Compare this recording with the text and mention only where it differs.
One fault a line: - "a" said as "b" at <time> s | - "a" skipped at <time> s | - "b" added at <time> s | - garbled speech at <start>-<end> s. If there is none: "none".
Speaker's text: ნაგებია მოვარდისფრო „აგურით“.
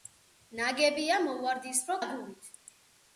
none